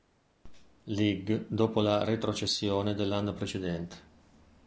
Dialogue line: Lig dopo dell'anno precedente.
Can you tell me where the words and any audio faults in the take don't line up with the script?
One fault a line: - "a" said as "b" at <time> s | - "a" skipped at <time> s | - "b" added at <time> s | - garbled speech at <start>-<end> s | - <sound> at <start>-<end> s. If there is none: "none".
- "la retrocessione" added at 1.8 s